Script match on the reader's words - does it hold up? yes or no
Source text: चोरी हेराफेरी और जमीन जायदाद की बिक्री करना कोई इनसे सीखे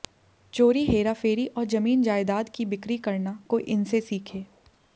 yes